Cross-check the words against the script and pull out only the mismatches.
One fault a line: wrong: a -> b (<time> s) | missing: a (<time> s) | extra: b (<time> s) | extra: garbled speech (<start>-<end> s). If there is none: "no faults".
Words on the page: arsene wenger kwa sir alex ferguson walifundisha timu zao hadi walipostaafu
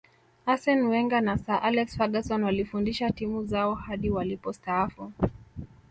wrong: kwa -> na (1.2 s)